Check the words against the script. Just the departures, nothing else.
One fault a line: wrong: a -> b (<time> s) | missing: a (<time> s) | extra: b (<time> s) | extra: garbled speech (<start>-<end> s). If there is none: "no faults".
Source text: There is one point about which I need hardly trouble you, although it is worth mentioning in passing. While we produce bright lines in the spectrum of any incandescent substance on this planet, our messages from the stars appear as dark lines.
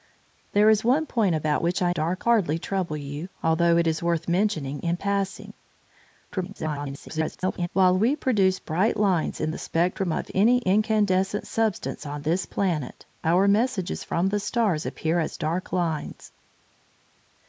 wrong: need -> dark (1.9 s)
extra: garbled speech (6.3-7.7 s)